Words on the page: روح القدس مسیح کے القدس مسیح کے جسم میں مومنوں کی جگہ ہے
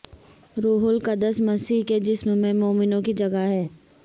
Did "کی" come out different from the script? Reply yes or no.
no